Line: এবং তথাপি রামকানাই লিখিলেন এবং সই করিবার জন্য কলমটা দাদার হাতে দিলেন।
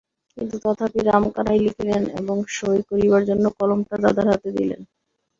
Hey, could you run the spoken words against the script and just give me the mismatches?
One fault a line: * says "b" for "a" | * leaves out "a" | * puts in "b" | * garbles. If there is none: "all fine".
* says "কিন্তু" for "এবং"